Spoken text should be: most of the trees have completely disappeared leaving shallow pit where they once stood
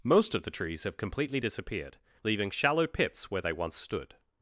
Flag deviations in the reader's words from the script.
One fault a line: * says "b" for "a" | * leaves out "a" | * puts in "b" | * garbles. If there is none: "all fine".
* says "pits" for "pit"